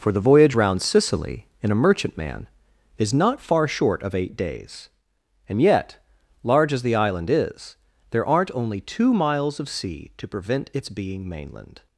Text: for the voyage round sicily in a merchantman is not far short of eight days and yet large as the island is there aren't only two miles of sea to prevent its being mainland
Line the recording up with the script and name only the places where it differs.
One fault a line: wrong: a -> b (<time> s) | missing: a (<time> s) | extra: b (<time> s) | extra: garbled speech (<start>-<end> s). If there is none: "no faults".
no faults